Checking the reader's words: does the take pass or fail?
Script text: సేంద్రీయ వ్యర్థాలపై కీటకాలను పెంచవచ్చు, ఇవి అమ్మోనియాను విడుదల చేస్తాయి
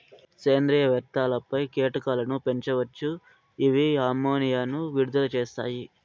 pass